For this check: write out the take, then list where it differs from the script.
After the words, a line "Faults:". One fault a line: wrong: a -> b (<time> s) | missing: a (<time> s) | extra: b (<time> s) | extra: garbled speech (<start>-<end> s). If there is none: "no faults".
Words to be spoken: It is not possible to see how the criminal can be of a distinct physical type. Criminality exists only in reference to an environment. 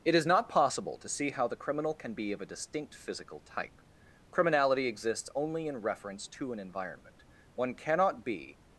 It is not possible to see how the criminal can be of a distinct physical type. Criminality exists only in reference to an environment. One cannot be
Faults:
extra: One cannot be (7.5 s)